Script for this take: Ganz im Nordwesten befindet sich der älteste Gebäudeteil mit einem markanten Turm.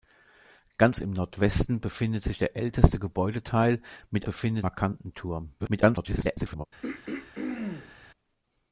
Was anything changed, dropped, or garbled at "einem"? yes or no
yes